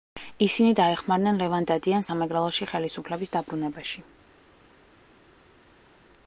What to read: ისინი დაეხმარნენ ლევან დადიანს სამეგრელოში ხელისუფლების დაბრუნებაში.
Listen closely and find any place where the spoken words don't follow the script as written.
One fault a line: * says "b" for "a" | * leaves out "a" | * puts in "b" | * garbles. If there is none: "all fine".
all fine